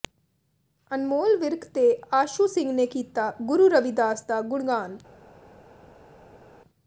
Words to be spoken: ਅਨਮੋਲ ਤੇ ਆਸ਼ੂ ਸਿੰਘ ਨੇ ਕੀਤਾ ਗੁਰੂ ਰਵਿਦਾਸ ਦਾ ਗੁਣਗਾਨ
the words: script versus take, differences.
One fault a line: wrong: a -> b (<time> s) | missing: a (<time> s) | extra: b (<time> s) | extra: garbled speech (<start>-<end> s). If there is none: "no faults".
extra: ਵਿਰਕ (1.4 s)